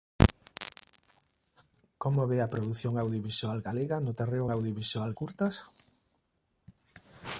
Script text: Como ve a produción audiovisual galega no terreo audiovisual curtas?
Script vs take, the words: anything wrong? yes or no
no